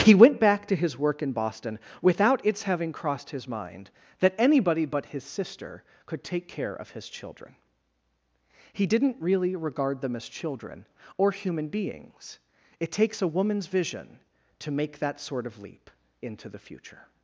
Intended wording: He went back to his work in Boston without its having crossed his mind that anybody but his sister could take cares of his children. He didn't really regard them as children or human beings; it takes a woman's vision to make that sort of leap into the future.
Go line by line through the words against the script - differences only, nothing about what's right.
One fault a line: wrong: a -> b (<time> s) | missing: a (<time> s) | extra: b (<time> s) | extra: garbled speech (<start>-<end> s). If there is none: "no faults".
wrong: cares -> care (6.5 s)